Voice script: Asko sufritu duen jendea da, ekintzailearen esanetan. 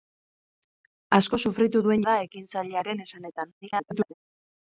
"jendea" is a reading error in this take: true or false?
true